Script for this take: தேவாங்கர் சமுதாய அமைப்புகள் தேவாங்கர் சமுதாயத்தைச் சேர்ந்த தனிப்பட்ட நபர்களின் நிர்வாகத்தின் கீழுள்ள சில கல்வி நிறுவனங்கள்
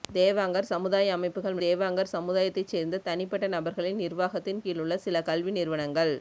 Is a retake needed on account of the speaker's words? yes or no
no